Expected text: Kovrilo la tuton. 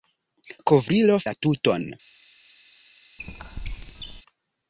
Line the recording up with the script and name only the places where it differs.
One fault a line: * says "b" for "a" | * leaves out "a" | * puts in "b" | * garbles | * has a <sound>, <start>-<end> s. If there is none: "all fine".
* has a squeak, 3.2-4.2 s